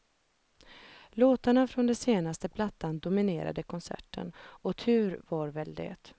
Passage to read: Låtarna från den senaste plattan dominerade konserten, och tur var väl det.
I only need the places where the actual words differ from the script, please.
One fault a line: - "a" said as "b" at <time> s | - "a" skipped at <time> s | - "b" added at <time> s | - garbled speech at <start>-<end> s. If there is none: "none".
none